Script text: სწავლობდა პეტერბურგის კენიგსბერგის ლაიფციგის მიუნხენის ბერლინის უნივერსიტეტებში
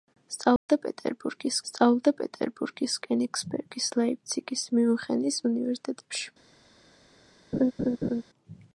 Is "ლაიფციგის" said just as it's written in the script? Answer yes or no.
yes